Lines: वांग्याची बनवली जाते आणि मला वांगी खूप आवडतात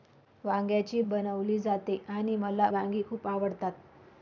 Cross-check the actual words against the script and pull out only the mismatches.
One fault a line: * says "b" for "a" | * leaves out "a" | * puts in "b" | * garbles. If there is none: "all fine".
all fine